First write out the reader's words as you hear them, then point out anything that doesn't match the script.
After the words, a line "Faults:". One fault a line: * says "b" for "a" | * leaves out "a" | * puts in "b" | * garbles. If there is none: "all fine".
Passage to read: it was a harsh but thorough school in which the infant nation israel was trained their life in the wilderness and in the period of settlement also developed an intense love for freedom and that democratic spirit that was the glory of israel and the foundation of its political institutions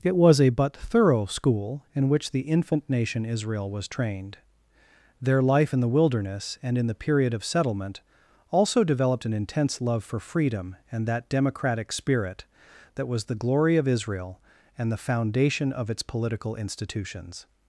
it was a but thorough school in which the infant nation israel was trained their life in the wilderness and in the period of settlement also developed an intense love for freedom and that democratic spirit that was the glory of israel and the foundation of its political institutions
Faults:
* leaves out "harsh"